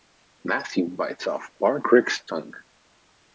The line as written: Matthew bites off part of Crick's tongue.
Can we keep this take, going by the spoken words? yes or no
no